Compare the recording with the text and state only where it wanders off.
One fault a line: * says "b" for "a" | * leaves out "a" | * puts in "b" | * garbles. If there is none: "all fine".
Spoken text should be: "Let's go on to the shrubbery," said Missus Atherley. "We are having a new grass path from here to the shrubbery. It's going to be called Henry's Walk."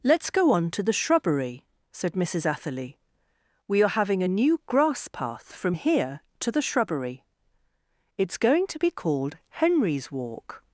all fine